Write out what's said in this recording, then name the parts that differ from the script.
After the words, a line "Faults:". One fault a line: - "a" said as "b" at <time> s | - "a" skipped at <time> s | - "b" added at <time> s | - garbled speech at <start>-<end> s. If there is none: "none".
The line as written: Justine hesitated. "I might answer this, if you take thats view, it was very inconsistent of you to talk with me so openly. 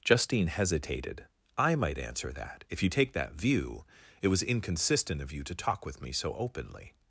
Justine hesitated. "I might answer that, if you take that view, it was inconsistent of you to talk with me so openly.
Faults:
- "this" said as "that" at 2.3 s
- "thats" said as "that" at 3.1 s
- "very" skipped at 4.4 s